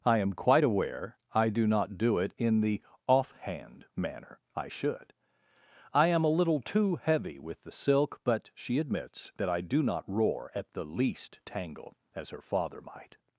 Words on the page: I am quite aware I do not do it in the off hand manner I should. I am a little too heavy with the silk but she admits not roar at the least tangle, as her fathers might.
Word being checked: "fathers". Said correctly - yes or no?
no